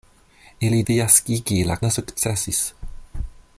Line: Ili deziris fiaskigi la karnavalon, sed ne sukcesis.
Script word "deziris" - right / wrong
wrong